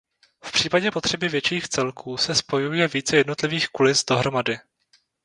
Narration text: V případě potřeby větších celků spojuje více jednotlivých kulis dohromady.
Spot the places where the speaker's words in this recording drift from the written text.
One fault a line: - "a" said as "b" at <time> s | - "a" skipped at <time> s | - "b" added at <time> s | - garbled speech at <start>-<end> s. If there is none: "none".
- "se" added at 2.2 s